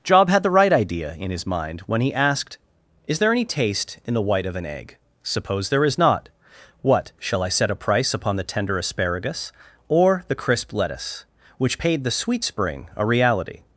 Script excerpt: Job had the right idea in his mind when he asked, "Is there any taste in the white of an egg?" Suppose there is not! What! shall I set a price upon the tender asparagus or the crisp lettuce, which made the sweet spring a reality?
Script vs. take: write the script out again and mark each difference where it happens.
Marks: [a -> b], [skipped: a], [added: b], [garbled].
Job had the right idea in his mind when he asked, "Is there any taste in the white of an egg?" Suppose there is not! What! shall I set a price upon the tender asparagus or the crisp lettuce, which [made -> paid] the sweet spring a reality?